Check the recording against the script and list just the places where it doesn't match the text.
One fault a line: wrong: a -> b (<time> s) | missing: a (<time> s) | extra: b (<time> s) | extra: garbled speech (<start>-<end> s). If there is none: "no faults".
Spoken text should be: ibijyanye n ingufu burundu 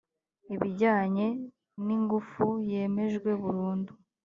extra: yemejwe (2.7 s)